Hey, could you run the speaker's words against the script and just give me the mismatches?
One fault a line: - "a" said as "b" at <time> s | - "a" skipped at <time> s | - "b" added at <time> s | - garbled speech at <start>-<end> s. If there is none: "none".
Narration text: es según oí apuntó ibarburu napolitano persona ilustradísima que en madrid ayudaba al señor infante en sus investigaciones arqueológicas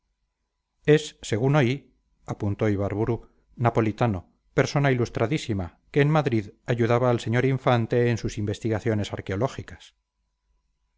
none